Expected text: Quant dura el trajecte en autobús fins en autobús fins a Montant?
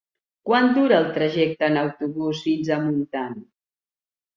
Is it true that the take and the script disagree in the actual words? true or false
true